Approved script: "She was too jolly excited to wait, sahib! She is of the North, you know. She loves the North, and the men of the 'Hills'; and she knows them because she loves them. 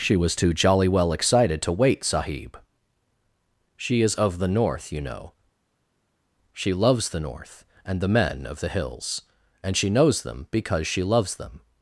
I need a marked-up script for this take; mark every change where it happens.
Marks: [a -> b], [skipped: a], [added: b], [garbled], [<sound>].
"She was too jolly [added: well] excited to wait, sahib! She is of the North, you know. She loves the North, and the men of the 'Hills'; and she knows them because she loves them.